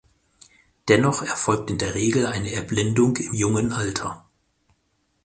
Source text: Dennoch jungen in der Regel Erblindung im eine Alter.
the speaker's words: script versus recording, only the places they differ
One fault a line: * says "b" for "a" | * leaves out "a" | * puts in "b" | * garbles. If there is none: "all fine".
* says "erfolgt" for "jungen"
* puts in "eine"
* says "jungen" for "eine"